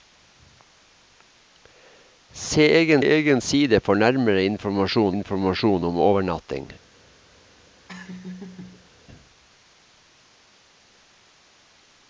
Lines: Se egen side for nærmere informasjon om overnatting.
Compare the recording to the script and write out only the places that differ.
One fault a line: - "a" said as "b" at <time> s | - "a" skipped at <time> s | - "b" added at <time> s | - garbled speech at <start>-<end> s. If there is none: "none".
- "egen" added at 3.0 s
- "informasjon" added at 5.1 s